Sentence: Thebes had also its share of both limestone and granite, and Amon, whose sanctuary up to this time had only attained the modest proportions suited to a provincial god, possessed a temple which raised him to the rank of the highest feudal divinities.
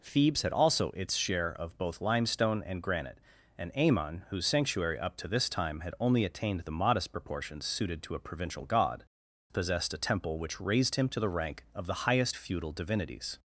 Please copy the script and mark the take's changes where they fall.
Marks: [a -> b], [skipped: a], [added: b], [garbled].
Thebes had also its share of both limestone and granite, and Amon, whose sanctuary up to this time had only attained the modest proportions suited to a provincial god, possessed a temple which raised him to the rank of the highest feudal divinities.